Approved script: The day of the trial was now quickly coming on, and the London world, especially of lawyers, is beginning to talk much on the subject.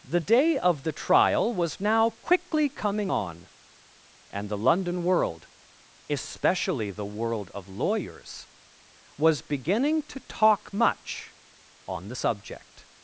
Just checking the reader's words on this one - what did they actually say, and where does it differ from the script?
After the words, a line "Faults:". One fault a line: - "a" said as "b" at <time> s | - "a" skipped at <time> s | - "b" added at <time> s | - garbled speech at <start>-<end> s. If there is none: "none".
The day of the trial was now quickly coming on, and the London world, especially the world of lawyers, was beginning to talk much on the subject.
Faults:
- "the world" added at 6.9 s
- "is" said as "was" at 9.2 s